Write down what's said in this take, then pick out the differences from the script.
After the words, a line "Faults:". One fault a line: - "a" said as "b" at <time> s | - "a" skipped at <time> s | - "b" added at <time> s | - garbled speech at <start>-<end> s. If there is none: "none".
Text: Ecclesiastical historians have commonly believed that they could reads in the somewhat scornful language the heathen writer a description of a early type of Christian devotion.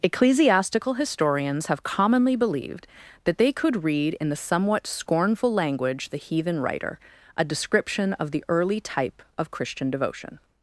Ecclesiastical historians have commonly believed that they could read in the somewhat scornful language the heathen writer a description of the early type of Christian devotion.
Faults:
- "reads" said as "read" at 3.8 s
- "a" said as "the" at 8.3 s